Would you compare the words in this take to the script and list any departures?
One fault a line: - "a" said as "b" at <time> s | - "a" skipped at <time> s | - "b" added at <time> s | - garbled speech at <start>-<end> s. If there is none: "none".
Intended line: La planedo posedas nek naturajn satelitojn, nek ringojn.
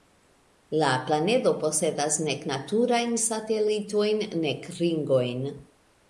none